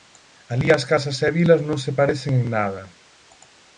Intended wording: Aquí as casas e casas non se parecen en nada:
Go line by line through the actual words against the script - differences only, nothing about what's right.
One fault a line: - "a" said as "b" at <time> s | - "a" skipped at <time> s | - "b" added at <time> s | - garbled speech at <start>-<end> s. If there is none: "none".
- "Aquí" said as "Alí" at 0.5 s
- "casas" said as "vilas" at 1.4 s